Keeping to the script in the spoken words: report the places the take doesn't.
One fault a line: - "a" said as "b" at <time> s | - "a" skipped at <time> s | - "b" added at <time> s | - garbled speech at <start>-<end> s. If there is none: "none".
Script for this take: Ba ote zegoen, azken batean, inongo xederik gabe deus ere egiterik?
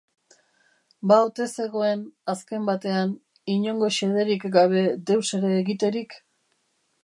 none